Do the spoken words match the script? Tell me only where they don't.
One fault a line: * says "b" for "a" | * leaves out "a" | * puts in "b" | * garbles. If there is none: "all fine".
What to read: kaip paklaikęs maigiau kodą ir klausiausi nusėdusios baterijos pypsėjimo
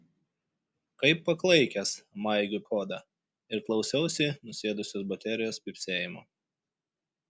all fine